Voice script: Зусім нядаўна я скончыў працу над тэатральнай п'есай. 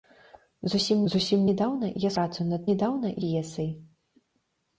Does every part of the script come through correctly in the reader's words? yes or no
no